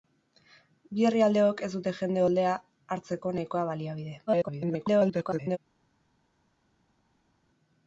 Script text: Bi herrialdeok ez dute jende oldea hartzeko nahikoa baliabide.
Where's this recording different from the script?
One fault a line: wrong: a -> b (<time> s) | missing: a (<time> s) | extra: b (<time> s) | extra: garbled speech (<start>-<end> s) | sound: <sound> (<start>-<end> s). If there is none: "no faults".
extra: garbled speech (4.3-5.6 s)